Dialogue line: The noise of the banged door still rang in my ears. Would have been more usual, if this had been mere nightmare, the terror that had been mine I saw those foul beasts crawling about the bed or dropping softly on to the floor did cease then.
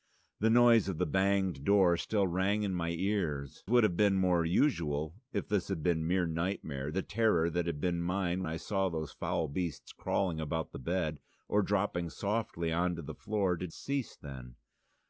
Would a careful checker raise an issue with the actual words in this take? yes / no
no